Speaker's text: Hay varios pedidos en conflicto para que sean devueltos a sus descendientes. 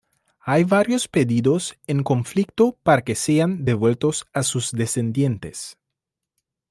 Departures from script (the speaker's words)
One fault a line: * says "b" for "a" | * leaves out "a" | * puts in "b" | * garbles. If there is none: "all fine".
all fine